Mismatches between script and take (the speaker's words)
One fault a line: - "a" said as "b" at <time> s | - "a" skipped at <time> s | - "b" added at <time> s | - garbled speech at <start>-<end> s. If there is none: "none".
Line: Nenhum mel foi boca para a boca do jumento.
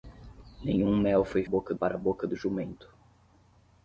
none